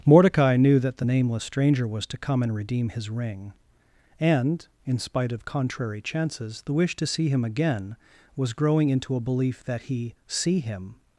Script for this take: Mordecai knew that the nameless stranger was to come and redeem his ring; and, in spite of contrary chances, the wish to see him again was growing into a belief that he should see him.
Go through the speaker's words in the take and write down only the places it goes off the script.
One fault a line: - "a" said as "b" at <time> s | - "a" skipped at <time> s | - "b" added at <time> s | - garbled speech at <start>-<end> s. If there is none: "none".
- "should" skipped at 10.2 s